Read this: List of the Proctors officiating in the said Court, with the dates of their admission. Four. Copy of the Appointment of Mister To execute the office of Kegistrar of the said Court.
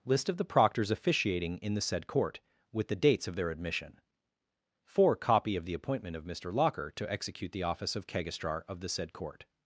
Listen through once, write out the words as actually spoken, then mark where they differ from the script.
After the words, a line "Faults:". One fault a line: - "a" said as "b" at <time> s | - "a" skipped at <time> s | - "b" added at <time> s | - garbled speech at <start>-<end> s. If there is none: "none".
List of the Proctors officiating in the said Court, with the dates of their admission. Four. Copy of the Appointment of Mister Locker to execute the office of Kegistrar of the said Court.
Faults:
- "Locker" added at 6.5 s